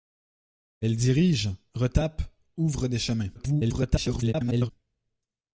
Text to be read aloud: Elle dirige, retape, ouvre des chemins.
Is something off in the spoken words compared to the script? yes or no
yes